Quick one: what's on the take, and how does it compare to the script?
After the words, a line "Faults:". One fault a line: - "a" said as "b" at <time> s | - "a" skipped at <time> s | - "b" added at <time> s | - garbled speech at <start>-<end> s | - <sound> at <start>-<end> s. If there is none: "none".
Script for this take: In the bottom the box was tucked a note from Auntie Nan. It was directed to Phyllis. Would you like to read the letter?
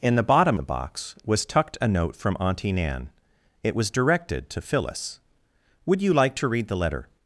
In the bottom the box was tucked a note from Auntie Nan. It was directed to Phyllis. Would you like to read the letter?
Faults:
none